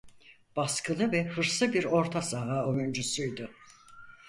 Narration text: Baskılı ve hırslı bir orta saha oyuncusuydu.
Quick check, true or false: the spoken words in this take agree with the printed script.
true